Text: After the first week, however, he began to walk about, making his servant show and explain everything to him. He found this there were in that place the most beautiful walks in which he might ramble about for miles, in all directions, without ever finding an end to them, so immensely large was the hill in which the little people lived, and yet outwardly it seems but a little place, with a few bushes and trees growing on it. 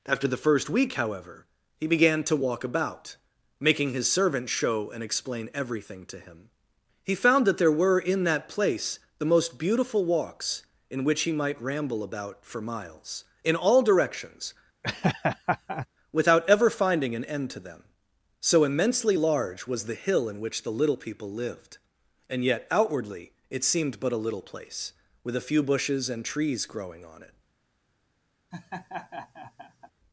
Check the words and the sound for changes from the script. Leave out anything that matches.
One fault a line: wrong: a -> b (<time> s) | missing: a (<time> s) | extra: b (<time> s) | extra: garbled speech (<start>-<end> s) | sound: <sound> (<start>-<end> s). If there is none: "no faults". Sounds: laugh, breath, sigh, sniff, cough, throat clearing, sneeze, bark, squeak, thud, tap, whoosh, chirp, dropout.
wrong: this -> that (7.5 s)
sound: laugh (14.8-15.9 s)
wrong: seems -> seemed (23.6 s)
sound: laugh (28.5-29.9 s)